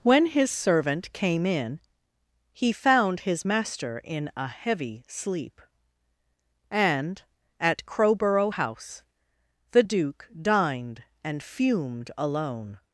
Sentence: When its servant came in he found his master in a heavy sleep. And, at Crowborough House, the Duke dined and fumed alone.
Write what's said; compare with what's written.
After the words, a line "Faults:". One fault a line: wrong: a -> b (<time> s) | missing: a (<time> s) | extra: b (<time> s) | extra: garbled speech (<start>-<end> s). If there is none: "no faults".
When his servant came in he found his master in a heavy sleep. And, at Crowborough House, the Duke dined and fumed alone.
Faults:
wrong: its -> his (0.3 s)